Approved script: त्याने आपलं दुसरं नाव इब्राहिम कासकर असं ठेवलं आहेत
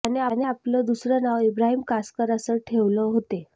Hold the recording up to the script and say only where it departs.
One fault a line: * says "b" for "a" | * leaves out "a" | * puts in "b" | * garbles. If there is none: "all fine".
* says "होते" for "आहेत"